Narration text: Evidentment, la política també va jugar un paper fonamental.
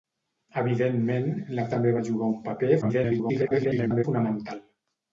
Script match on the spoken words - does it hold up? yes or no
no